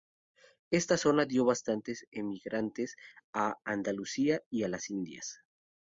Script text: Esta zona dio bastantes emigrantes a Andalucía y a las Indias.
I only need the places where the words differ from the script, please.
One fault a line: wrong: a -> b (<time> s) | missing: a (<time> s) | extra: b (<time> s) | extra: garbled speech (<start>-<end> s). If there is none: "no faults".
no faults